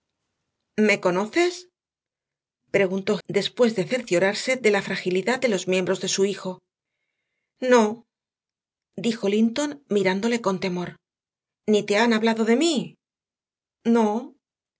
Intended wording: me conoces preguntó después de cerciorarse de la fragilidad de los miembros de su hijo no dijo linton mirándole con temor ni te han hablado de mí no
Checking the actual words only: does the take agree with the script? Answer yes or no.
yes